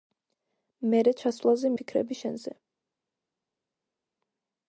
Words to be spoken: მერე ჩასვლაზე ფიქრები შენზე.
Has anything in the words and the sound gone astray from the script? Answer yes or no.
no